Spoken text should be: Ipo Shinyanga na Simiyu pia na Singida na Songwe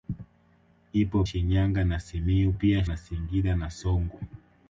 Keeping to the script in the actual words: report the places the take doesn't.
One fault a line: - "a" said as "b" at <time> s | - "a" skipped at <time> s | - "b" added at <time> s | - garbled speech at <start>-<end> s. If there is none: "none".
none